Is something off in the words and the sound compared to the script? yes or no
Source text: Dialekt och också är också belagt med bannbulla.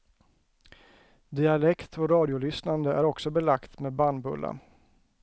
yes